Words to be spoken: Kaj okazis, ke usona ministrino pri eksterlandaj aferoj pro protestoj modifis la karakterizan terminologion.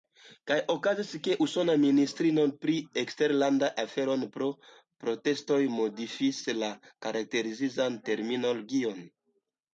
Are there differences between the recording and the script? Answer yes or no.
no